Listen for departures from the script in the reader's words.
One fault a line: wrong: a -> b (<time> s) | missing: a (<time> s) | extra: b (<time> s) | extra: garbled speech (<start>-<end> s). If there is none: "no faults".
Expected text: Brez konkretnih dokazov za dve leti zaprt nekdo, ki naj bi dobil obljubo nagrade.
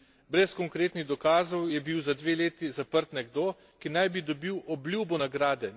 extra: je bil (1.7 s)